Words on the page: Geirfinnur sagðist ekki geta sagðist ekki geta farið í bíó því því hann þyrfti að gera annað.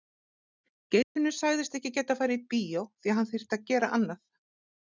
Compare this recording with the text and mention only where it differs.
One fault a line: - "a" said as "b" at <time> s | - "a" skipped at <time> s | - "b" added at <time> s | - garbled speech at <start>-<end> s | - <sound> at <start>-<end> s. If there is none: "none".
- dropout at 1.0-1.2 s
- "sagðist ekki geta" skipped at 2.2 s
- "því" skipped at 3.1 s